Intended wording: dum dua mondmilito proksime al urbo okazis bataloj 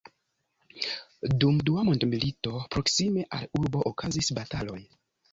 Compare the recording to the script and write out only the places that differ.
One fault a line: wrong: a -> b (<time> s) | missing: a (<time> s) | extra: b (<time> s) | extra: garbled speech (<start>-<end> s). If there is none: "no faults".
no faults